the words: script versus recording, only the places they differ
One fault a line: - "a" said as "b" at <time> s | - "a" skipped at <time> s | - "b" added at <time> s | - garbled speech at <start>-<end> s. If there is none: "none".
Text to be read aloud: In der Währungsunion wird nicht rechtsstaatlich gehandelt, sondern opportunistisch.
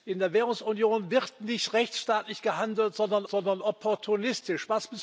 - "sondern" added at 3.3 s